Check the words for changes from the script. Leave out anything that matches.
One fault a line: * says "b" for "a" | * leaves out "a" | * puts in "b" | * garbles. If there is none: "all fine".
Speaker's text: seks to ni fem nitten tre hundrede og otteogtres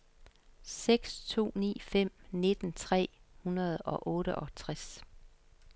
all fine